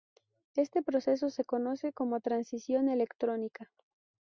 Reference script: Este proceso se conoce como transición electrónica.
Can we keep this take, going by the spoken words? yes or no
yes